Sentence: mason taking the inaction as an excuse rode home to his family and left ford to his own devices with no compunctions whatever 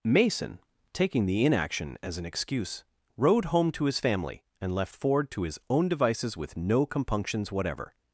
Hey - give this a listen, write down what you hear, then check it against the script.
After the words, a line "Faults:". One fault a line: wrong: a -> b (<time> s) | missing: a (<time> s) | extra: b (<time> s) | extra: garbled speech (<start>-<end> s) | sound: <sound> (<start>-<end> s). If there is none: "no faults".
mason taking the inaction as an excuse rode home to his family and left ford to his own devices with no compunctions whatever
Faults:
no faults